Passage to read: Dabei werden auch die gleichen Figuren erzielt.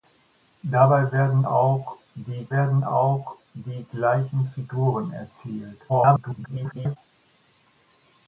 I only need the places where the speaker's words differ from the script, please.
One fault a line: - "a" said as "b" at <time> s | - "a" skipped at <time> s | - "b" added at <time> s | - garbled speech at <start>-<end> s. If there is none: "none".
- "werden auch die" added at 2.5 s
- garbled speech at 5.9-7.0 s